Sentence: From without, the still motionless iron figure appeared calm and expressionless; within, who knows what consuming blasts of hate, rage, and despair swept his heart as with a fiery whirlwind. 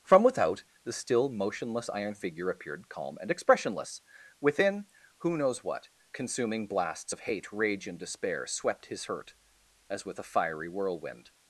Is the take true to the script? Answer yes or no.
no